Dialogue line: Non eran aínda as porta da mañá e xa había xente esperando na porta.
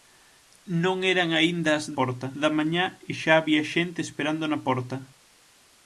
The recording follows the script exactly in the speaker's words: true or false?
true